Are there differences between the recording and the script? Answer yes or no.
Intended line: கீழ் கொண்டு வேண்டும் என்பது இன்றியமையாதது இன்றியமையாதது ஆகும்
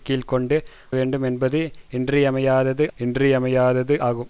no